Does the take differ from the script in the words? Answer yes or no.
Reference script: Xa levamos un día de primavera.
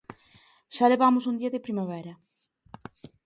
no